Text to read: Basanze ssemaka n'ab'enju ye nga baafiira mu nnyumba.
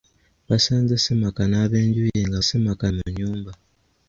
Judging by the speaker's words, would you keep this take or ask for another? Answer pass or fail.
fail